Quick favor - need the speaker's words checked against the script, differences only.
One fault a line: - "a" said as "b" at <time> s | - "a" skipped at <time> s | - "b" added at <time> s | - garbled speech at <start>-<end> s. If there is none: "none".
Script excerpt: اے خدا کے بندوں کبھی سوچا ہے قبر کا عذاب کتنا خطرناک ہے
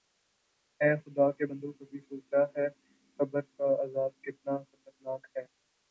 none